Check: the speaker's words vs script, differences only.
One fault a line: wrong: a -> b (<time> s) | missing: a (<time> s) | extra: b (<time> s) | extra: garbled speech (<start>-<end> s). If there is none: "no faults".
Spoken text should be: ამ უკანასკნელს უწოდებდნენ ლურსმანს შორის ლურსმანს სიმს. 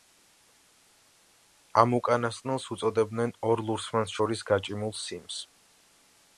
extra: ორ (3.5 s)
wrong: ლურსმანს -> გაჭიმულ (4.5 s)